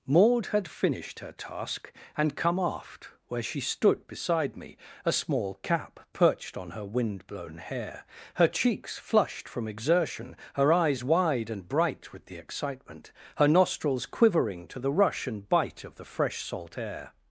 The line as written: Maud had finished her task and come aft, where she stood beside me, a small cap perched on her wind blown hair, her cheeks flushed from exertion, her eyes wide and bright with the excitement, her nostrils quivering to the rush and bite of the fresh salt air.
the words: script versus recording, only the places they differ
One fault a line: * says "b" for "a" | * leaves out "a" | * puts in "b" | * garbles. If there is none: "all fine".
all fine